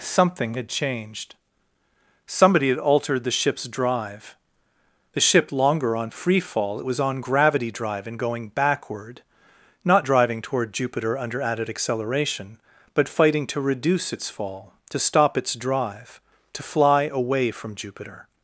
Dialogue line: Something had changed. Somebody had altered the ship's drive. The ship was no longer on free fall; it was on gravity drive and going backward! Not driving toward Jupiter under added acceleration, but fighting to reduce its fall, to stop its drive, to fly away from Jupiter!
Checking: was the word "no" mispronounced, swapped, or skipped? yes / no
yes